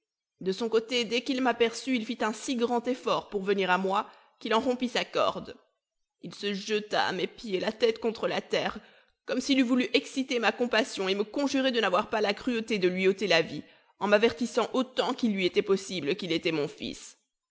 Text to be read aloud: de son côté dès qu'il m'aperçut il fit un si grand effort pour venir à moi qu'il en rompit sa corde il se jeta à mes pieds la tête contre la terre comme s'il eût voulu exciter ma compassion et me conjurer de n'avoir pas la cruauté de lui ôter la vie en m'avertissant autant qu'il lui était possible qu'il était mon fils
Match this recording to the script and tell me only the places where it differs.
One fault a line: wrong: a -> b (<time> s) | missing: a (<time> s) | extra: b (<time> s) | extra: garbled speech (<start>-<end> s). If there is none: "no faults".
no faults